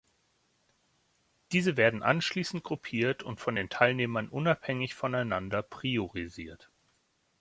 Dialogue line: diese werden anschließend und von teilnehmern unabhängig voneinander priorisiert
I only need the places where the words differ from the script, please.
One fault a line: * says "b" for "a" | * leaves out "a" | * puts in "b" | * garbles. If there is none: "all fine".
* puts in "gruppiert"
* puts in "den"